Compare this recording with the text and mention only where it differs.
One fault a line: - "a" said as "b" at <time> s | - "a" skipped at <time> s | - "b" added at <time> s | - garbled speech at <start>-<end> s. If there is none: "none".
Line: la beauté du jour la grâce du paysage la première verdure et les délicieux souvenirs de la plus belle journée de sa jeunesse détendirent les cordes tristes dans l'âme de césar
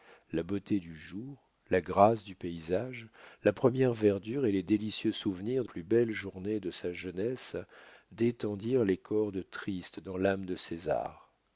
- "la" skipped at 5.7 s